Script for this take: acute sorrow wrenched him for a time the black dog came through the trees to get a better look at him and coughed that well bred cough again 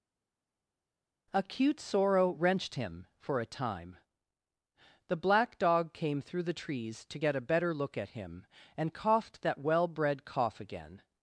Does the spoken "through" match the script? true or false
true